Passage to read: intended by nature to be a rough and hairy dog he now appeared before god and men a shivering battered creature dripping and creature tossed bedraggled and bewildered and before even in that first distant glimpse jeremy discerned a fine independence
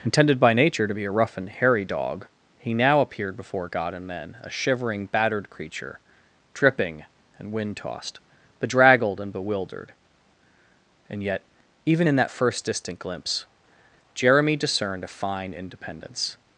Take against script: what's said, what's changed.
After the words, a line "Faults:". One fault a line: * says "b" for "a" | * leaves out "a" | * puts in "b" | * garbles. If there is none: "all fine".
intended by nature to be a rough and hairy dog he now appeared before god and men a shivering battered creature dripping and wind tossed bedraggled and bewildered and yet even in that first distant glimpse jeremy discerned a fine independence
Faults:
* says "wind" for "creature"
* says "yet" for "before"